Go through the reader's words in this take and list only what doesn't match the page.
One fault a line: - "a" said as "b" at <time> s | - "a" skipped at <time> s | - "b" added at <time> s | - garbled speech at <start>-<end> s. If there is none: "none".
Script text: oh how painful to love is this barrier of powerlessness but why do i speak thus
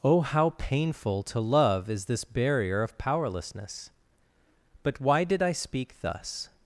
- "do" said as "did" at 5.2 s